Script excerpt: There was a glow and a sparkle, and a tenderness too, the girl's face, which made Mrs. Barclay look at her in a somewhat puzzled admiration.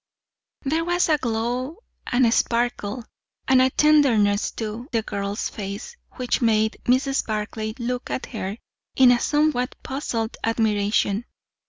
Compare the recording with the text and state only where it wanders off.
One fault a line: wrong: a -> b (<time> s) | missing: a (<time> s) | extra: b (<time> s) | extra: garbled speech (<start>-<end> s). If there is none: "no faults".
no faults